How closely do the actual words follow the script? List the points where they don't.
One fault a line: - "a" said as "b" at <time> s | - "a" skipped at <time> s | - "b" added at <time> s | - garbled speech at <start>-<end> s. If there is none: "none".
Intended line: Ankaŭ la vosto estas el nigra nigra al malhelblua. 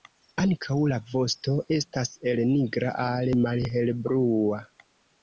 - "nigra" skipped at 2.9 s